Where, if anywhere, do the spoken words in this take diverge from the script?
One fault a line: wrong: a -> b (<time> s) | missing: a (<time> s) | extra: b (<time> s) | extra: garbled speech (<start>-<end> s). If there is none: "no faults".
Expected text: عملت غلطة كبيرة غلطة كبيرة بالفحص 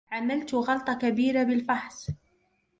missing: غلطة كبيرة (1.4 s)